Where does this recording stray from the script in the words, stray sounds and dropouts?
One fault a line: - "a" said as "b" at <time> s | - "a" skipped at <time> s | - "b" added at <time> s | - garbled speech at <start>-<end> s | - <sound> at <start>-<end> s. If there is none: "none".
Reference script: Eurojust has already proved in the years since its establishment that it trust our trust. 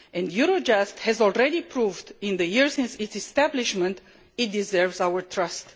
- "trust" said as "deserves" at 4.5 s